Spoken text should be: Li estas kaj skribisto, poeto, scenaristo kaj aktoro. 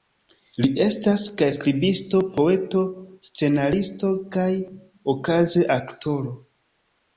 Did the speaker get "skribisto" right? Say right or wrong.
right